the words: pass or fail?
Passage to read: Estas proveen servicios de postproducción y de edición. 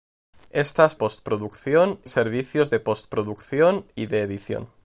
fail